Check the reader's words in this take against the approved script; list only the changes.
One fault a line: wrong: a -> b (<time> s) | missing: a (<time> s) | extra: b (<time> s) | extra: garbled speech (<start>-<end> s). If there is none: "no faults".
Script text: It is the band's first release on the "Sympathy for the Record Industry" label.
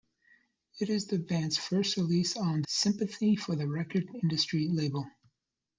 missing: the (2.6 s)